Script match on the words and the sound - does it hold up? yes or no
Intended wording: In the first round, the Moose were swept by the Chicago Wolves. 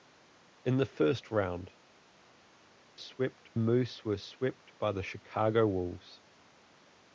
no